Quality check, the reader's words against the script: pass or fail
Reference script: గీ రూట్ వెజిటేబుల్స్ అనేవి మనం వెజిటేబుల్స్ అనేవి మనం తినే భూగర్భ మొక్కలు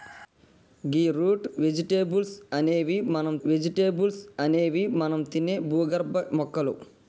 pass